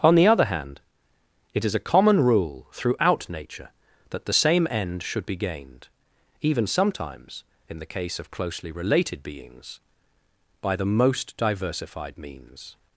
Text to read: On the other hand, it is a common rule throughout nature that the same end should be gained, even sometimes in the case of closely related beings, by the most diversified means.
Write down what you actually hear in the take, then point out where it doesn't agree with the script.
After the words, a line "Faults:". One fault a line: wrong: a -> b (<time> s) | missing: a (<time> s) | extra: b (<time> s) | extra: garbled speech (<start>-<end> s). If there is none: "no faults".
On the other hand, it is a common rule throughout nature that the same end should be gained, even sometimes in the case of closely related beings, by the most diversified means.
Faults:
no faults